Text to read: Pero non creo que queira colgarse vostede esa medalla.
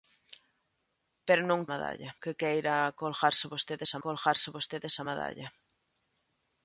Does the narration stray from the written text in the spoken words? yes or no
yes